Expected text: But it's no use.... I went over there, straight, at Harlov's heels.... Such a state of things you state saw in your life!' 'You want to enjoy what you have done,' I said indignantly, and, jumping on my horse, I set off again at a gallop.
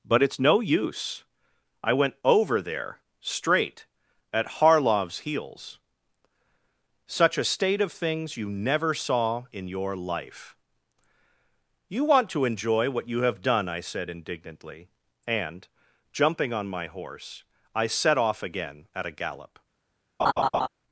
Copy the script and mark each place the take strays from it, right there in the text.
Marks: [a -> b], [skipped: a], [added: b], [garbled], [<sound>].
But it's no use.... I went over there, straight, at Harlov's heels.... Such a state of things you [state -> never] saw in your life!' 'You want to enjoy what you have done,' I said indignantly, and, jumping on my horse, I set off again at a gallop. [laugh]